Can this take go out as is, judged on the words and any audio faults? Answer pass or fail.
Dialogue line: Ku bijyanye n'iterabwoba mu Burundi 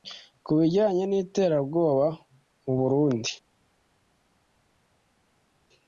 pass